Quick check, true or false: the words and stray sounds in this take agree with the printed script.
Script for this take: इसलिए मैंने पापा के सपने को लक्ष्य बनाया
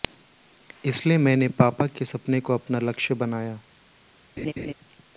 false